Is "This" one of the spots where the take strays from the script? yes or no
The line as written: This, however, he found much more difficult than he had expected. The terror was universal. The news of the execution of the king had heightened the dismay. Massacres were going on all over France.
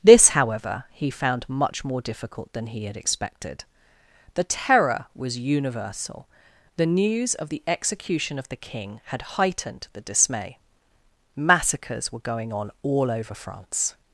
no